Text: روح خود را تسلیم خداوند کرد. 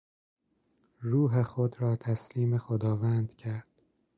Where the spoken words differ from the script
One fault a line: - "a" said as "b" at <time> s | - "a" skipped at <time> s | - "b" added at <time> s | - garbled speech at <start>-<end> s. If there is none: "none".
none